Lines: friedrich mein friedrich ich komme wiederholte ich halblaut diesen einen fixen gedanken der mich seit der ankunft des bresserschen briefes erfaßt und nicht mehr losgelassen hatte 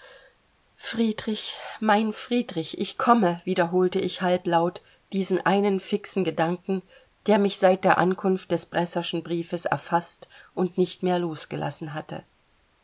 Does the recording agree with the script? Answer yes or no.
yes